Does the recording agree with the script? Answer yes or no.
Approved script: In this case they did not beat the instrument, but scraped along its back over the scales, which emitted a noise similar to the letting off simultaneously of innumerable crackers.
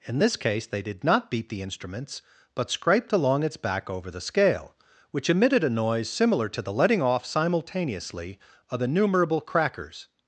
no